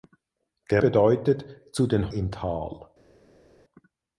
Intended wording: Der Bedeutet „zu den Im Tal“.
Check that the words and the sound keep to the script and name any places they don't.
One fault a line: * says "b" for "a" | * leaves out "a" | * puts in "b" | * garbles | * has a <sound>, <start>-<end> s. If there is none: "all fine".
all fine